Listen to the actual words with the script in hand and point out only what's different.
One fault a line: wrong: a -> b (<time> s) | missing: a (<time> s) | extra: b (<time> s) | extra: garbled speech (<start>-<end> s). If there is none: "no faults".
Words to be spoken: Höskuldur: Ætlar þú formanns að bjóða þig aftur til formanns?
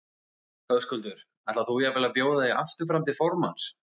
wrong: formanns -> jafnvel (1.8 s)
extra: fram (2.9 s)